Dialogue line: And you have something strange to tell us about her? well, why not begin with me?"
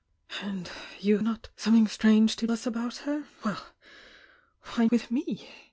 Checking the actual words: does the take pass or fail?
fail